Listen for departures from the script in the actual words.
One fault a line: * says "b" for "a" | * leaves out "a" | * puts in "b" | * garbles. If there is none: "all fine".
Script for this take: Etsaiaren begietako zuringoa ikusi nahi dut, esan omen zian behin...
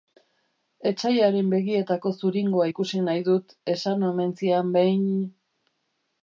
all fine